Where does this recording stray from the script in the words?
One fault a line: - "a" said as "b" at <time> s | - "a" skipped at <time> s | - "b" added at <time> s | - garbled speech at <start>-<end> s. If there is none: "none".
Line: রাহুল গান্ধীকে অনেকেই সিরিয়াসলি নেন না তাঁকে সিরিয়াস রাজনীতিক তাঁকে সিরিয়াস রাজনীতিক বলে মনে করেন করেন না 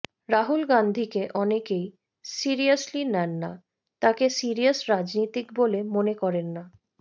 - "তাঁকে সিরিয়াস রাজনীতিক" skipped at 5.5 s
- "করেন" skipped at 6.5 s